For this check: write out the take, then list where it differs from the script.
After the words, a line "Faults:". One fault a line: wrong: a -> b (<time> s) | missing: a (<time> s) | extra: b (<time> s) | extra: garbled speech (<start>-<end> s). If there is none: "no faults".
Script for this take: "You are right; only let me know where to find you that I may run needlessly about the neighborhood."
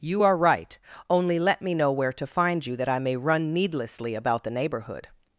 "You are right; only let me know where to find you that I may run needlessly about the neighborhood."
Faults:
no faults